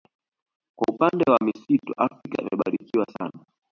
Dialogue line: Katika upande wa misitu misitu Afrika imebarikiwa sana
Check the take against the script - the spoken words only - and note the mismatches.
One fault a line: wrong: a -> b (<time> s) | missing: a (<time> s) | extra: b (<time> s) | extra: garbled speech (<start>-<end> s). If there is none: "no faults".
wrong: Katika -> Kwa (0.8 s)
missing: misitu (1.9 s)